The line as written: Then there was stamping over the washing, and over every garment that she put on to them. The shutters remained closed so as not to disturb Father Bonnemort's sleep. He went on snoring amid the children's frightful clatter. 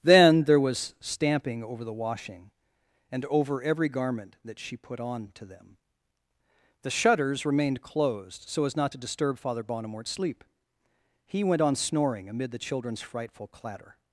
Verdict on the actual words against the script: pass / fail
pass